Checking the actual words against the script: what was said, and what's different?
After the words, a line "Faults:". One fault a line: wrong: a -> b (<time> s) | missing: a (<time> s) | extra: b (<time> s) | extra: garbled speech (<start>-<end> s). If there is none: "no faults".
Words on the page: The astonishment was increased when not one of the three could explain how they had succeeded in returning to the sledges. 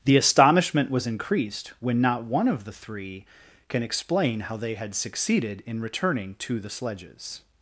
The astonishment was increased when not one of the three can explain how they had succeeded in returning to the sledges.
Faults:
wrong: could -> can (3.7 s)